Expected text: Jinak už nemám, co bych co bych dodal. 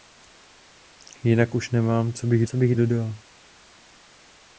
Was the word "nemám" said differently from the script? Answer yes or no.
no